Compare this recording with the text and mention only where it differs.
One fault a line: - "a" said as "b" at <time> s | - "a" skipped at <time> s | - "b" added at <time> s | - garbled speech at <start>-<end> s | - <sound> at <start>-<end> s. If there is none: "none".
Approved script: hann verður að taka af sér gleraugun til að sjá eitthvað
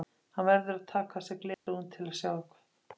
- dropout at 1.5-1.7 s